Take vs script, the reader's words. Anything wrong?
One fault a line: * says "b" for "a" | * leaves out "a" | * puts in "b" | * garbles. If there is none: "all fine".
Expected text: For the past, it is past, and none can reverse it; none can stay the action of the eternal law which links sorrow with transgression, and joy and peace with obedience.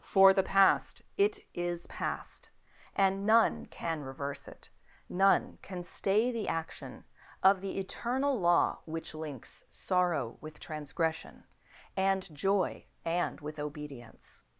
* leaves out "peace"